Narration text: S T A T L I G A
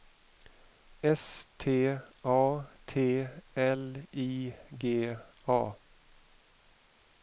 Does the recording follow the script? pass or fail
pass